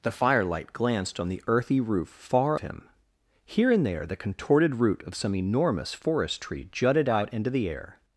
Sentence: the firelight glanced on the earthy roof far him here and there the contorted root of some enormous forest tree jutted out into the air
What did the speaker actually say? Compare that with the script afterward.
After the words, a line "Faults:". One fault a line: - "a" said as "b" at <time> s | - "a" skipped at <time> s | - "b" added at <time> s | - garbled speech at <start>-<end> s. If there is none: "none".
the firelight glanced on the earthy roof far him here and there the contorted root of some enormous forest tree jutted out into the air
Faults:
none